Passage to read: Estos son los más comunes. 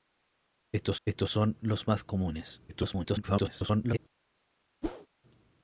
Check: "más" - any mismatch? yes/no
no